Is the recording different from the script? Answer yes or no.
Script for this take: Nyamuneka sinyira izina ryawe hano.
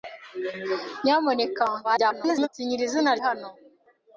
yes